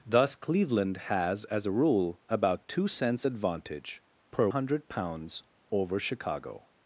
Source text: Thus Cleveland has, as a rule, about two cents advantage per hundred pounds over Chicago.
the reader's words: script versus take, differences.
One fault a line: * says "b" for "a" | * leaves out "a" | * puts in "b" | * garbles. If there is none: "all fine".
all fine